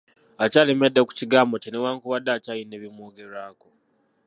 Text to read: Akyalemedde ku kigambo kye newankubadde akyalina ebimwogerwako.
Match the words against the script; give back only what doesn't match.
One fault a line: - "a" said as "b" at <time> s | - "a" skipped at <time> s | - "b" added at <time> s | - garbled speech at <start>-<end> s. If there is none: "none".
none